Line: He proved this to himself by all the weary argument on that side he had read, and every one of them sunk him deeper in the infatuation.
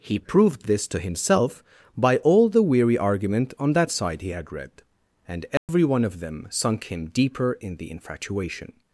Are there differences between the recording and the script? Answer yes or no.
no